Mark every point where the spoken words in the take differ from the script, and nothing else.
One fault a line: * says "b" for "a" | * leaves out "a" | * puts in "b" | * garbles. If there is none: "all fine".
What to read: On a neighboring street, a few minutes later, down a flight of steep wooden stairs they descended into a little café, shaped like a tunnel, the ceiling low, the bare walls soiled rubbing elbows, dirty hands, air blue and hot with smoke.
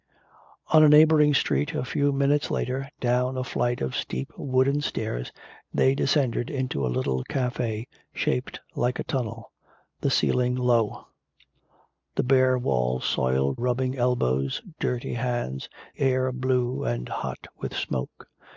all fine